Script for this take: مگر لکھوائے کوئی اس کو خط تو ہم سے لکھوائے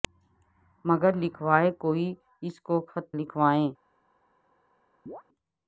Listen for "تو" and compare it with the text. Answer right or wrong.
wrong